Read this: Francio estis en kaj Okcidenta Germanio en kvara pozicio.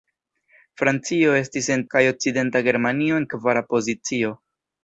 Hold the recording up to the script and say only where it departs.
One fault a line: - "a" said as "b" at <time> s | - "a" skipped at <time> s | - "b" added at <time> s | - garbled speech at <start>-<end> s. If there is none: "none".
none